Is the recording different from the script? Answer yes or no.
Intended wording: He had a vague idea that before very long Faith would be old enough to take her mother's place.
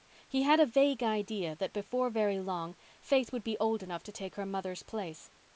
no